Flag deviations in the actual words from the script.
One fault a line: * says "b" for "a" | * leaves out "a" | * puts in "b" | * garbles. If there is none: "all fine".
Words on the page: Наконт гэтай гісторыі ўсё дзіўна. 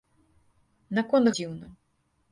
* leaves out "гэтай гісторыі ўсё"